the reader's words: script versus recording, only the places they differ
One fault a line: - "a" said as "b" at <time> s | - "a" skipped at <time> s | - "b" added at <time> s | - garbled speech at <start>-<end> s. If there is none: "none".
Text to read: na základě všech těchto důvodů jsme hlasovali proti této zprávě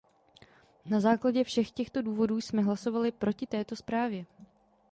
none